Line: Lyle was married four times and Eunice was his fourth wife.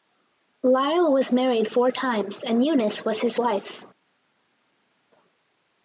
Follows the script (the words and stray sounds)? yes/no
no